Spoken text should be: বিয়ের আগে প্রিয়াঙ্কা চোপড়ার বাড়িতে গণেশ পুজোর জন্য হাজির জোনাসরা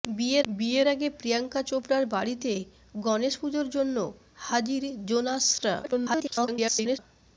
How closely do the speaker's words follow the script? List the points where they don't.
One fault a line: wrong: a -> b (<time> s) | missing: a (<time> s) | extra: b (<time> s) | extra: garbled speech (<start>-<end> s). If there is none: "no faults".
extra: বিয়ের (0.5 s)
extra: garbled speech (5.8-7.0 s)